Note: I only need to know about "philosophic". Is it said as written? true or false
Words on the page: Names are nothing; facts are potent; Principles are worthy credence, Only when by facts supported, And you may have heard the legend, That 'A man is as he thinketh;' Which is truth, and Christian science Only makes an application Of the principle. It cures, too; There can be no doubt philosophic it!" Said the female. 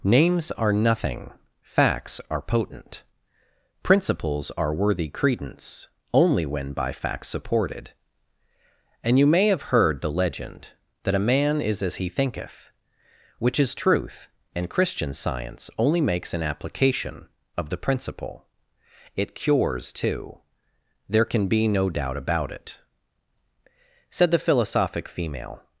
false